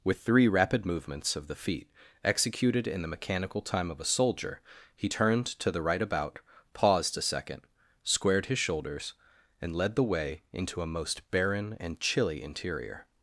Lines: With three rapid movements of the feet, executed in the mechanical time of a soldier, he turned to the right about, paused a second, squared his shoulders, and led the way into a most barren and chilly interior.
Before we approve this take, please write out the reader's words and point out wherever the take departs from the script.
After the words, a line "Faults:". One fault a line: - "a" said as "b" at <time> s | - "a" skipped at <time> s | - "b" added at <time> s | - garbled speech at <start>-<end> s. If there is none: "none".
With three rapid movements of the feet, executed in the mechanical time of a soldier, he turned to the right about, paused a second, squared his shoulders, and led the way into a most barren and chilly interior.
Faults:
none